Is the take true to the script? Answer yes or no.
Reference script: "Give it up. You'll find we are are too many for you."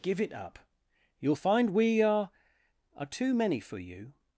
yes